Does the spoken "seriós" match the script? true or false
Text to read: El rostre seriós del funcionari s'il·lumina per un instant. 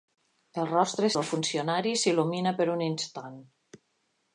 false